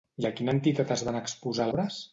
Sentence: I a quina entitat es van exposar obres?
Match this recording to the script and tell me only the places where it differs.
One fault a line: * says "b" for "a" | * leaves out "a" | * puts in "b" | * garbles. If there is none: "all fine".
all fine